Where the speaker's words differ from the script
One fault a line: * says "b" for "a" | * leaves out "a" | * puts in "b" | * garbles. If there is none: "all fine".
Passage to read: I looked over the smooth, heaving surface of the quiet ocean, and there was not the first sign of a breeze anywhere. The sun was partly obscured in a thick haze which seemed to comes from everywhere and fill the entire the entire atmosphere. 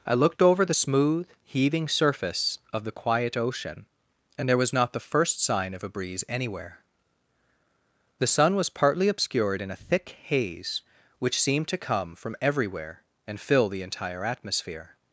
* says "come" for "comes"
* leaves out "the entire"